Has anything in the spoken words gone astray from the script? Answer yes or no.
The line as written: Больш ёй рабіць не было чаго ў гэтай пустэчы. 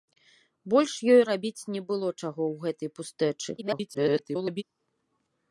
yes